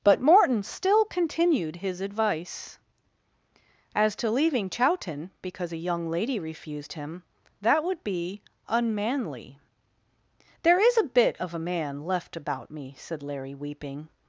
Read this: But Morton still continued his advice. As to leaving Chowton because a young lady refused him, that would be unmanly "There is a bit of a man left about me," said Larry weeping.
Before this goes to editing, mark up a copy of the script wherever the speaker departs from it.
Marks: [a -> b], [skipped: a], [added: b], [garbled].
But Morton still continued his advice. As to leaving Chowton because a young lady refused him, that would be unmanly "There is a bit of a man left about me," said Larry weeping.